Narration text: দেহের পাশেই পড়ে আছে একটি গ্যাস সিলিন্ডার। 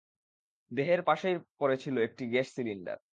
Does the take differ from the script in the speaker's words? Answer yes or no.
yes